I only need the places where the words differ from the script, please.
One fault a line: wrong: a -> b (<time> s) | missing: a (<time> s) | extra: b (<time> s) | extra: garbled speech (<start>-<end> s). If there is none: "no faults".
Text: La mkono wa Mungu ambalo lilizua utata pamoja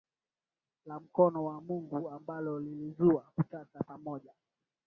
no faults